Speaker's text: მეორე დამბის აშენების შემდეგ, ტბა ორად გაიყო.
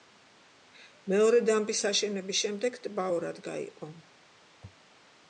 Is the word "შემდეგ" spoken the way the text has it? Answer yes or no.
yes